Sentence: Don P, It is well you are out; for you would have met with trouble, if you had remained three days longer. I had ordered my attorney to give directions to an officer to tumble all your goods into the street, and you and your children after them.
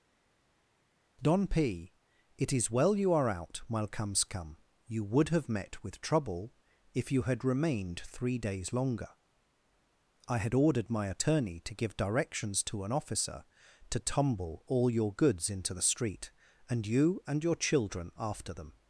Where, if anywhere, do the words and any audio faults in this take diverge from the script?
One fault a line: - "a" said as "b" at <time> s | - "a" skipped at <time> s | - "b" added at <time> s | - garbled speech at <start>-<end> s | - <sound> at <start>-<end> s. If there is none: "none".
- "for" said as "while comes come" at 3.7 s